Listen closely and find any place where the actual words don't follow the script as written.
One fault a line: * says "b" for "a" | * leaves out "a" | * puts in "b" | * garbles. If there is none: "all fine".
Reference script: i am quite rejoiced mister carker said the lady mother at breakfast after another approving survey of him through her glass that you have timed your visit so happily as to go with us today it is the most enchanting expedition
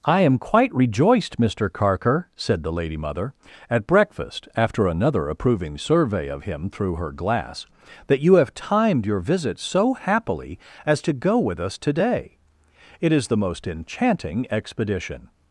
all fine